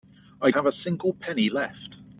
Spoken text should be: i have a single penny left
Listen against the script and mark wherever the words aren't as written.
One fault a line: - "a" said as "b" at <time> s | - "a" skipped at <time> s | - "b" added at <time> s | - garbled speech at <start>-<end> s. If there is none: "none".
none